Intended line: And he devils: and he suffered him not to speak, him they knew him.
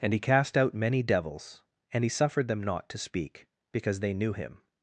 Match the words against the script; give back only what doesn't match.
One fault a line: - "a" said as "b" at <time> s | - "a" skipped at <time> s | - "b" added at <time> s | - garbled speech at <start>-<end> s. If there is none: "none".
- "cast out many" added at 0.2 s
- "him" said as "them" at 2.5 s
- "him" said as "because" at 3.7 s